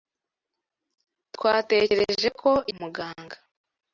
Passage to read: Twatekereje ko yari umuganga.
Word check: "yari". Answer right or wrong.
wrong